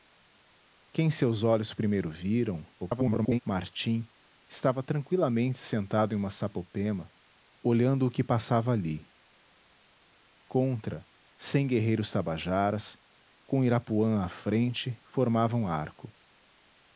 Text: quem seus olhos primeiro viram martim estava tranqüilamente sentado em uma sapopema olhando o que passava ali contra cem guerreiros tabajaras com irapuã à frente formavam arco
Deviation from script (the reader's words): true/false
true